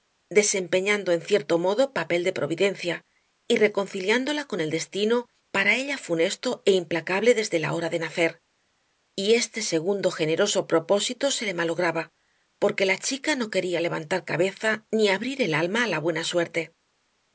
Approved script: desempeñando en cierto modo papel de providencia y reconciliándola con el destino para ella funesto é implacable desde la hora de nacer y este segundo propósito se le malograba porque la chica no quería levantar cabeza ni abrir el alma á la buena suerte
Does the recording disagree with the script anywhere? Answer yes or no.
yes